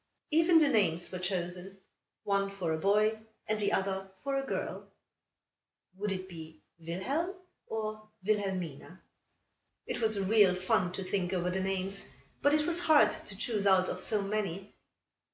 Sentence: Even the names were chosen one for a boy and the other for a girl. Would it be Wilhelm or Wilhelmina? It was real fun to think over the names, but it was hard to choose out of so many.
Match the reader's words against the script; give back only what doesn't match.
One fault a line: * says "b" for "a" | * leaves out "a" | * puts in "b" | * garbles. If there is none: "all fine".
all fine